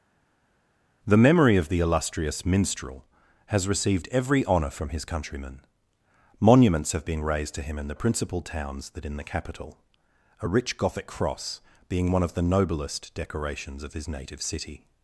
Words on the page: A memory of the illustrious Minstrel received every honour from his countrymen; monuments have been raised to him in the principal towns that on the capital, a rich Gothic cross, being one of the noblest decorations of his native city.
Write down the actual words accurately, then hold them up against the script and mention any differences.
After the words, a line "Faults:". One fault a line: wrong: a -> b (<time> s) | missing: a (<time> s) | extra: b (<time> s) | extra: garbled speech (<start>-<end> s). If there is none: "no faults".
The memory of the illustrious Minstrel has received every honour from his countrymen; monuments have been raised to him in the principal towns that in the capital, a rich Gothic cross, being one of the noblest decorations of his native city.
Faults:
wrong: A -> The (1.0 s)
extra: has (3.5 s)
wrong: on -> in (9.0 s)